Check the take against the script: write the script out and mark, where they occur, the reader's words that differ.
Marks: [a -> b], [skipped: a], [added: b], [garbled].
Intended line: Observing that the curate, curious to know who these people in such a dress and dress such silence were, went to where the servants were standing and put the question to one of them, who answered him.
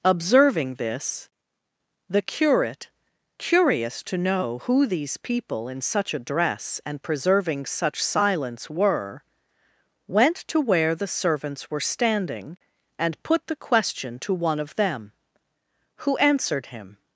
Observing [that -> this] the curate, curious to know who these people in such a dress and [dress -> preserving] such silence were, went to where the servants were standing and put the question to one of them, who answered him.